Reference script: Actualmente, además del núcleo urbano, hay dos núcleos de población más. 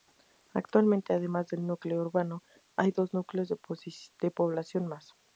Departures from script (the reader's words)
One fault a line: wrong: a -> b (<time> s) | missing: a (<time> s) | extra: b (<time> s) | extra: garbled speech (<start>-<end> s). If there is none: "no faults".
no faults